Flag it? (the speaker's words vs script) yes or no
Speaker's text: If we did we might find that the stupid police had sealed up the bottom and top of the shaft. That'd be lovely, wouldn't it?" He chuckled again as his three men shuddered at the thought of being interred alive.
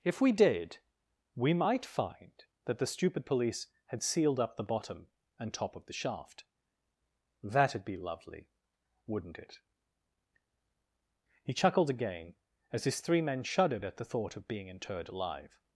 no